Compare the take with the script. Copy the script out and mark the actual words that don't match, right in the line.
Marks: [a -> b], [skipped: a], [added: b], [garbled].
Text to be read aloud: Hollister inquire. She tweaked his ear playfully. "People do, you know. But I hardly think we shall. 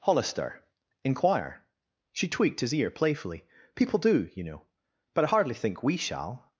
Hollister inquire. She tweaked his ear playfully. "People do, you know. But I hardly think we shall.